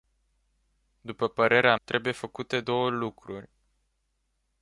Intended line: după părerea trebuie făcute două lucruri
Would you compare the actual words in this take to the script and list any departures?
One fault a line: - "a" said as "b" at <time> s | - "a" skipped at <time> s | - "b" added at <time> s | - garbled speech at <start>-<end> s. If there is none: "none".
none